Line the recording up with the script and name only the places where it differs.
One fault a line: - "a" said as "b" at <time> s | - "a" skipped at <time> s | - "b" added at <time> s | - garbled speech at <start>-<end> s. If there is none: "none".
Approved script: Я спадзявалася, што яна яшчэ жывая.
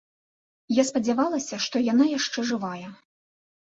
none